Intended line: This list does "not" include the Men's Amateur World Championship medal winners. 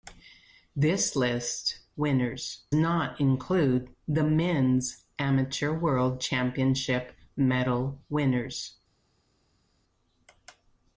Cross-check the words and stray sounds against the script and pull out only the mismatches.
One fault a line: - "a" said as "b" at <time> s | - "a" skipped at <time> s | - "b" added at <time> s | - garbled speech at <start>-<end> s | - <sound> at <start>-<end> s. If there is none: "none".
- "does" said as "winners" at 2.0 s